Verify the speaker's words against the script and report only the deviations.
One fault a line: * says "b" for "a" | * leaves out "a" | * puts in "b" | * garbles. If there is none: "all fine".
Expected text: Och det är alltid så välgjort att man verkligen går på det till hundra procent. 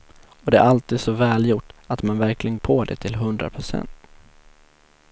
* leaves out "går"